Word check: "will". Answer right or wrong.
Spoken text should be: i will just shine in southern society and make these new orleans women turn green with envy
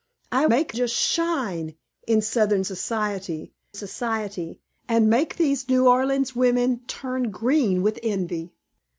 wrong